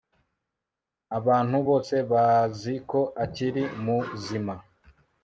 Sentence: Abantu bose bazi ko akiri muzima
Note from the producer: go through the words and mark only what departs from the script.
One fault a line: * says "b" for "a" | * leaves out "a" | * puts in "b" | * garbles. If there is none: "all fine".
all fine